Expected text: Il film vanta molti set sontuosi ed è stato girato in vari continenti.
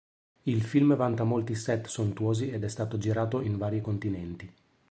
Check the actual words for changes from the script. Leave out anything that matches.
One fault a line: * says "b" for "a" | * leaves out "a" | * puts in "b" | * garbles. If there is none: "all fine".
all fine